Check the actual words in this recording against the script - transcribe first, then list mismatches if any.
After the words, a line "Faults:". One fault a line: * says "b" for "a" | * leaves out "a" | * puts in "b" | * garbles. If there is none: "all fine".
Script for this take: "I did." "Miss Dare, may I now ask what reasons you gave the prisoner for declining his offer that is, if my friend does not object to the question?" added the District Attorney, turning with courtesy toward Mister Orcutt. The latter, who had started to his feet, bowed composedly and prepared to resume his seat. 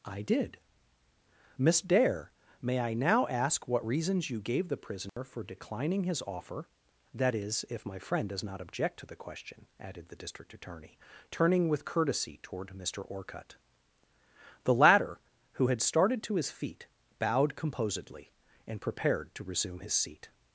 "I did." "Miss Dare, may I now ask what reasons you gave the prisoner for declining his offer that is, if my friend does not object to the question?" added the District Attorney, turning with courtesy toward Mister Orcutt. The latter, who had started to his feet, bowed composedly and prepared to resume his seat.
Faults:
all fine